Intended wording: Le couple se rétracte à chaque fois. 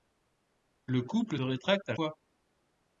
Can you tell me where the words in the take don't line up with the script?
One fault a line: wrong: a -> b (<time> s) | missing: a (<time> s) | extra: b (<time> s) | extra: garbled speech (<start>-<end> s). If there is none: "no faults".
missing: se (1.4 s)
missing: chaque (1.9 s)